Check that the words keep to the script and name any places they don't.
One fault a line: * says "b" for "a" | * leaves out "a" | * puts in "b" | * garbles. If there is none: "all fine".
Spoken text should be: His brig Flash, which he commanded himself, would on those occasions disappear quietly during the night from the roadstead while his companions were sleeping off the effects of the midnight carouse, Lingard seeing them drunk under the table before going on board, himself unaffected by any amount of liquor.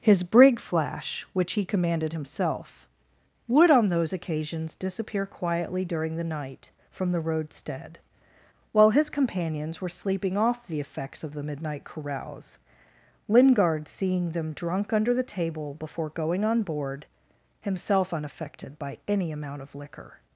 all fine